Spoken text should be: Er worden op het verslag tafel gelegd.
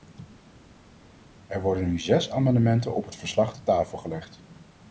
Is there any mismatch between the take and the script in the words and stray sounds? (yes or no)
yes